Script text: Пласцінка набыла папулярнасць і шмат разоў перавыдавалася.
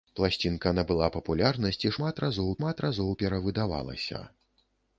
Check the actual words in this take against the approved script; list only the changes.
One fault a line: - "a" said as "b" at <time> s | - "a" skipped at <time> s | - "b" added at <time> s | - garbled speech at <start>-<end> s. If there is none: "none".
- "шмат разоў" added at 2.6 s